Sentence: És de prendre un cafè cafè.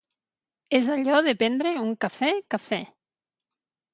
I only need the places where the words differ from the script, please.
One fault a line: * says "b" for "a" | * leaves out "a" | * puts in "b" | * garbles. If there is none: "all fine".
* puts in "allò"